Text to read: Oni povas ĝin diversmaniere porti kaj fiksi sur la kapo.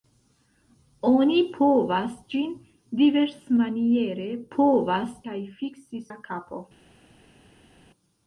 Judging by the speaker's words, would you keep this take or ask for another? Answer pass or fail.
fail